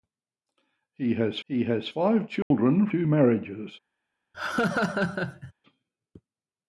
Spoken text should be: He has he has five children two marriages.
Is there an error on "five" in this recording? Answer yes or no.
no